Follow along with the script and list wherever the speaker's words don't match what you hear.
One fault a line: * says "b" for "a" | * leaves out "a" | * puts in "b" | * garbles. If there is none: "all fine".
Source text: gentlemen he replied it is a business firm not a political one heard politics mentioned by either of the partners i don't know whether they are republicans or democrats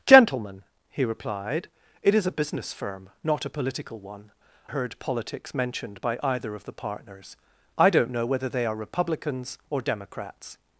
all fine